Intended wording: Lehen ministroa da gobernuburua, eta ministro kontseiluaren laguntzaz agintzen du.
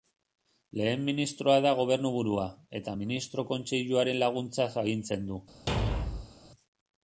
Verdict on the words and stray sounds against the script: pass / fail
fail